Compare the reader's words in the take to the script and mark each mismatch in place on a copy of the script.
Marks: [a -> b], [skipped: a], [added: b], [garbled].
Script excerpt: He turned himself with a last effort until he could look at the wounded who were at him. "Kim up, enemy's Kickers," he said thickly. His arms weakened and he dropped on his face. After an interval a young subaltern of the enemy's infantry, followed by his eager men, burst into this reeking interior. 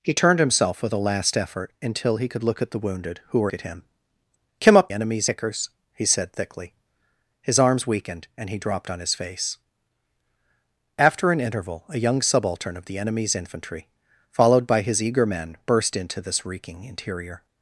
He turned himself with a last effort until he could look at the wounded who were at him. "Kim up, enemy's Kickers," he said thickly. His arms weakened and he dropped on his face. After an interval a young subaltern of the enemy's infantry, followed by his eager men, burst into this reeking interior.